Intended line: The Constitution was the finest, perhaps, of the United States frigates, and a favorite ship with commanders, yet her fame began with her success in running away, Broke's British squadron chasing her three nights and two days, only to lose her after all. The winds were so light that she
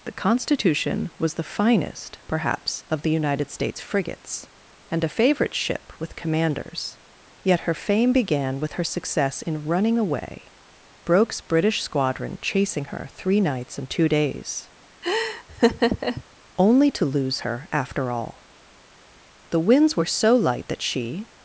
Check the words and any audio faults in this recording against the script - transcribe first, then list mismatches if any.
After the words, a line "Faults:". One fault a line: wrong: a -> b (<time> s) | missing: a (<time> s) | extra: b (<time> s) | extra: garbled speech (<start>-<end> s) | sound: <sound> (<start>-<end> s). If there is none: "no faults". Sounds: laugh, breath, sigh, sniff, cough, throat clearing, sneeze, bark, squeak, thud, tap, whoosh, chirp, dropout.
The Constitution was the finest, perhaps, of the United States frigates, and a favorite ship with commanders, yet her fame began with her success in running away, Broke's British squadron chasing her three nights and two days, only to lose her after all. The winds were so light that she
Faults:
sound: laugh (15.0-16.2 s)